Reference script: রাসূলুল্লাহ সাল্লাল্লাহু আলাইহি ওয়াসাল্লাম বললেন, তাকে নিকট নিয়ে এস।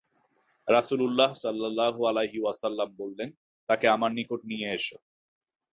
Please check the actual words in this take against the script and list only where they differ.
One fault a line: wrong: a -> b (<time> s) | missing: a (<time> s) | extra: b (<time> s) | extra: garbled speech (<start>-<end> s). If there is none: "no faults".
extra: আমার (3.9 s)